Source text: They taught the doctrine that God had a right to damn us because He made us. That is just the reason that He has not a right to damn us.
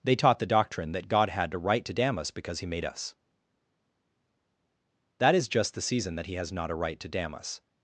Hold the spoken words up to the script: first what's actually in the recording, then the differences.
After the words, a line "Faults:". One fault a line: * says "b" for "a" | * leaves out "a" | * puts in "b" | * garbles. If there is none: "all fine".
They taught the doctrine that God had a right to damn us because He made us. That is just the season that He has not a right to damn us.
Faults:
* says "season" for "reason"